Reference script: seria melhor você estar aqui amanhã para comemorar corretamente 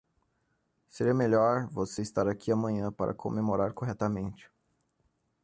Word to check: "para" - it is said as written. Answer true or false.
true